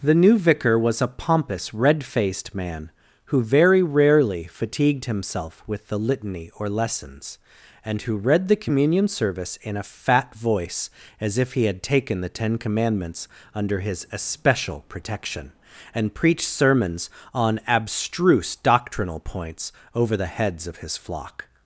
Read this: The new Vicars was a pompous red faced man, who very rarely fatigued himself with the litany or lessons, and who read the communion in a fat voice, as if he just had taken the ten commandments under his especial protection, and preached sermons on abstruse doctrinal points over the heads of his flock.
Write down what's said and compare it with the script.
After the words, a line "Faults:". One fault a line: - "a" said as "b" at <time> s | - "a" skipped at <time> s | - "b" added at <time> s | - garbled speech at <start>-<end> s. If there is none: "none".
The new Vicar was a pompous red faced man, who very rarely fatigued himself with the litany or lessons, and who read the communion service in a fat voice, as if he had taken the ten commandments under his especial protection, and preached sermons on abstruse doctrinal points over the heads of his flock.
Faults:
- "Vicars" said as "Vicar" at 0.4 s
- "service" added at 9.1 s
- "just" skipped at 11.7 s